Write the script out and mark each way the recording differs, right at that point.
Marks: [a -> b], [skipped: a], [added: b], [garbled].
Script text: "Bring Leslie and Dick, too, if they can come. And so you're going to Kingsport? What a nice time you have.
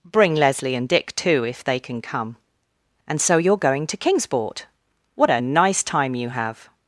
"Bring Leslie and Dick, too, if they can come. And so you're going to Kingsport? What a nice time you have.